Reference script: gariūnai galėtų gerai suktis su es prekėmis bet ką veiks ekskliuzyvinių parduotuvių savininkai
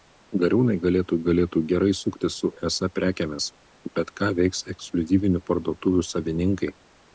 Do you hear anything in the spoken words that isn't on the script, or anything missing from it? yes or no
yes